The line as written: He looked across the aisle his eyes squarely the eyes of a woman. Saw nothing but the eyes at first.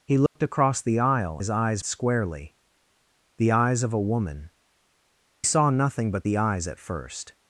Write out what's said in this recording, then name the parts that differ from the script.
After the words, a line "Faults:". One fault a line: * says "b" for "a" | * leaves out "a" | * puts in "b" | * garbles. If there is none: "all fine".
He looked across the aisle his eyes squarely the eyes of a woman. Saw nothing but the eyes at first.
Faults:
all fine